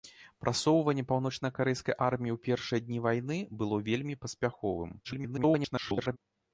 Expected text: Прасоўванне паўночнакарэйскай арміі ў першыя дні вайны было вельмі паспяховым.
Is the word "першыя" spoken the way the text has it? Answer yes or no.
yes